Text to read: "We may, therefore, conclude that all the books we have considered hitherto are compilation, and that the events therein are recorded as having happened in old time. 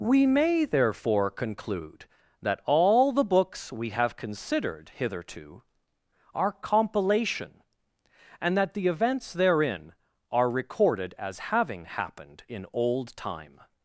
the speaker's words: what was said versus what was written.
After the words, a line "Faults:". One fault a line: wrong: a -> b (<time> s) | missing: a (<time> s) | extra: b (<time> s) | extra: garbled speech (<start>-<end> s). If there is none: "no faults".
"We may, therefore, conclude that all the books we have considered hitherto are compilation, and that the events therein are recorded as having happened in old time.
Faults:
no faults